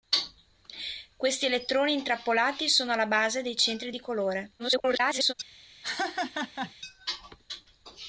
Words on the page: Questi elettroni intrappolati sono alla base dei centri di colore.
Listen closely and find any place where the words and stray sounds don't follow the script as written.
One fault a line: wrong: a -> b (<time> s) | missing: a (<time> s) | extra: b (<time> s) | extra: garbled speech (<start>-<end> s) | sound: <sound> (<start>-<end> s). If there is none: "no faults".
extra: garbled speech (4.6-5.3 s)
sound: laugh (5.8-6.7 s)